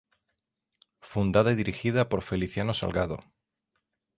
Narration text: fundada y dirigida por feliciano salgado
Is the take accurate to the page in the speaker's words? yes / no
yes